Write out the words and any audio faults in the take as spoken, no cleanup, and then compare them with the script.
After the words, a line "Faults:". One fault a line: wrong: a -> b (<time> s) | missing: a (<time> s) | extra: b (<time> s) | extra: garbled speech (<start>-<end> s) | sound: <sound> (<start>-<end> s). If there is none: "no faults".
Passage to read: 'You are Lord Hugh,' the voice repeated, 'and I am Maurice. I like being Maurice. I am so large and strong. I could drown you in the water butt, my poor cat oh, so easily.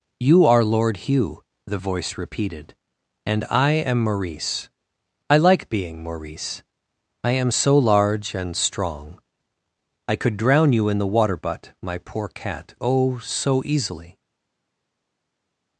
'You are Lord Hugh,' the voice repeated, 'and I am Maurice. I like being Maurice. I am so large and strong. I could drown you in the water butt, my poor cat oh, so easily.
Faults:
no faults